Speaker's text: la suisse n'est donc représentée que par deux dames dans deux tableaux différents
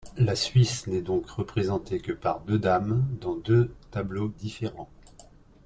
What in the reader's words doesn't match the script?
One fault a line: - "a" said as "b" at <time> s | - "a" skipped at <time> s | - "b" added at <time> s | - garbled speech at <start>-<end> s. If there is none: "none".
none